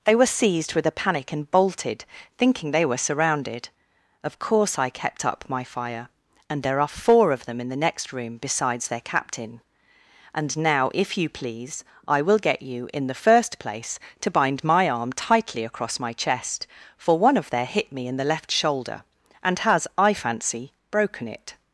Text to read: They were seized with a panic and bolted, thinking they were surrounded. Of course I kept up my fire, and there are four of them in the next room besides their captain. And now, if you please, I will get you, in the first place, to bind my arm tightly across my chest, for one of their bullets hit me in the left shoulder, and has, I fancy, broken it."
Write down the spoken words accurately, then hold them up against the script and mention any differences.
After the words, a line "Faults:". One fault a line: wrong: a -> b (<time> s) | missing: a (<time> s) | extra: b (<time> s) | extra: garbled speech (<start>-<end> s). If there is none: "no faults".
They were seized with a panic and bolted, thinking they were surrounded. Of course I kept up my fire, and there are four of them in the next room besides their captain. And now, if you please, I will get you, in the first place, to bind my arm tightly across my chest, for one of their hit me in the left shoulder, and has, I fancy, broken it."
Faults:
missing: bullets (17.7 s)